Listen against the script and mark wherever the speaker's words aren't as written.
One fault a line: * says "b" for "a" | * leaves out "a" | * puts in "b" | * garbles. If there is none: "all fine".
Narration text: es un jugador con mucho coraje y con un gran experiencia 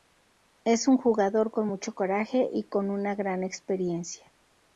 * says "una" for "un"